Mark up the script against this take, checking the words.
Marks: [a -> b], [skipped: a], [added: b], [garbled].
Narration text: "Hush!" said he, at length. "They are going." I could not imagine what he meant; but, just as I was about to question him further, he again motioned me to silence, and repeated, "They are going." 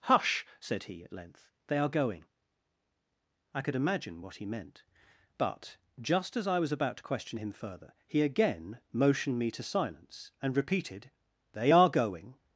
"Hush!" said he, at length. "They are going." I could [skipped: not] imagine what he meant; but, just as I was about to question him further, he again motioned me to silence, and repeated, "They are going."